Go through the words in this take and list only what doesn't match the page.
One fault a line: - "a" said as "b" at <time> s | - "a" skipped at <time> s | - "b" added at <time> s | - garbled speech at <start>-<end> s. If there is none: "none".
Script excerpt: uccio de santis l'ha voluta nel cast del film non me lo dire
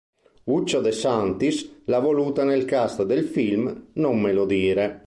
none